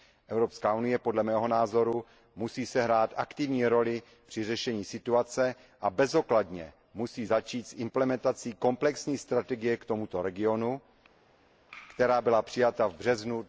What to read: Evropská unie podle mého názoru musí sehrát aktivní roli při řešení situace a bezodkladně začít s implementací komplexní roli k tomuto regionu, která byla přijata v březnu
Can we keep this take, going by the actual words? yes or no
no